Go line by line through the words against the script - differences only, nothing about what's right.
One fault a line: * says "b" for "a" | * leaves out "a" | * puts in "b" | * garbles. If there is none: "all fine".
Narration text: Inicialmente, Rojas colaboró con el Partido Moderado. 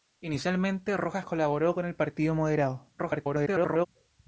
* garbles